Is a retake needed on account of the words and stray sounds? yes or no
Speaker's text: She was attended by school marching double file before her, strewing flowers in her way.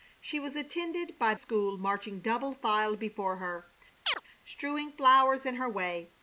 yes